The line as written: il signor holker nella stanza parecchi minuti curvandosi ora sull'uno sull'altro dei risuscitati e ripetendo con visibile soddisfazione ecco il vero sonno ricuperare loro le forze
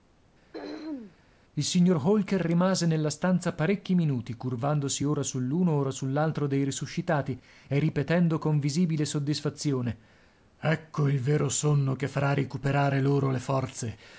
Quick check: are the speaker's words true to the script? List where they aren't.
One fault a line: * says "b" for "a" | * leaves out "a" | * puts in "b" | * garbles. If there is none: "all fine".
* puts in "rimase"
* puts in "ora"
* puts in "che farà"